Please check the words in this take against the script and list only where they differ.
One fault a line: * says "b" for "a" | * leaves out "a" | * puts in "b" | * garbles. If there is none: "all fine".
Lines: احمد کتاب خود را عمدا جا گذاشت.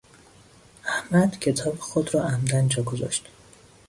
all fine